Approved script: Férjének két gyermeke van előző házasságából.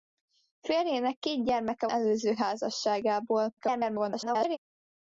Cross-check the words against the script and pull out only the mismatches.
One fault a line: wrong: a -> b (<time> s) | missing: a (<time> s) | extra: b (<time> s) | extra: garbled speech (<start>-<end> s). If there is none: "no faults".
missing: van (1.9 s)
extra: garbled speech (3.6-4.6 s)